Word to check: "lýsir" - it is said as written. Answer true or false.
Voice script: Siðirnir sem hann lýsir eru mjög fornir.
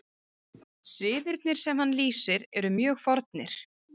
true